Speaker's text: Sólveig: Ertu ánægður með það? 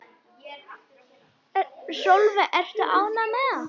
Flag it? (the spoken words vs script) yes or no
no